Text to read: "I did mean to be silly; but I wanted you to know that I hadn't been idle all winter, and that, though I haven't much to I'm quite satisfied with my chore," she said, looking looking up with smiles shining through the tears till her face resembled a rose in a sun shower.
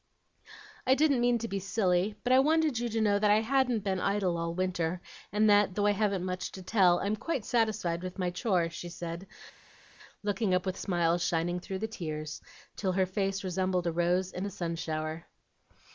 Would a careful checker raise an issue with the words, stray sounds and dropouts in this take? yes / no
yes